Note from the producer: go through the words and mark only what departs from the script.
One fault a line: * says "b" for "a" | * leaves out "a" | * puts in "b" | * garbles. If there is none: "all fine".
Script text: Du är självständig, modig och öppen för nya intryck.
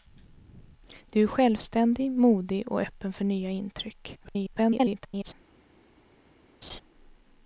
* garbles